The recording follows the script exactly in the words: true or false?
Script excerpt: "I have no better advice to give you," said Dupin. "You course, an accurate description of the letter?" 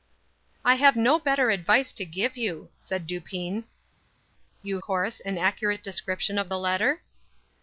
true